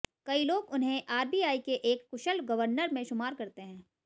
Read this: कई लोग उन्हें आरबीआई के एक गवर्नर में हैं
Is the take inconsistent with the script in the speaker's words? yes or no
yes